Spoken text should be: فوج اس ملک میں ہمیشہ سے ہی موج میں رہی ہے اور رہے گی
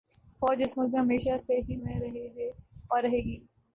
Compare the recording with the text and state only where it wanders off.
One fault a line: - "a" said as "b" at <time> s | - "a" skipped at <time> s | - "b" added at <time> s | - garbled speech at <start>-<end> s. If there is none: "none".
- "موج" skipped at 1.8 s